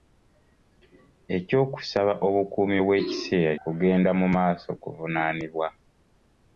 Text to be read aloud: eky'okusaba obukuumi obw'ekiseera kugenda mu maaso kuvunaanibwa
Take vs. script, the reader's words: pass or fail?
pass